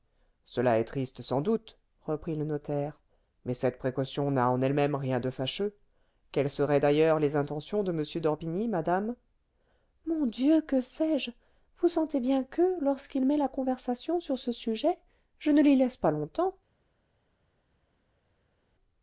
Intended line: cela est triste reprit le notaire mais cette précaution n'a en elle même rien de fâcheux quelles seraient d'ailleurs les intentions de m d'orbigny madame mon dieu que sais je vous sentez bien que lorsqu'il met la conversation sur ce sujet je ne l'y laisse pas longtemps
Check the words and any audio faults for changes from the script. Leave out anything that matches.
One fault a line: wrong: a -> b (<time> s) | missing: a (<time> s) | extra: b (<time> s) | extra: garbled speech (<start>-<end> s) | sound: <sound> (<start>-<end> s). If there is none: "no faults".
extra: sans doute (1.2 s)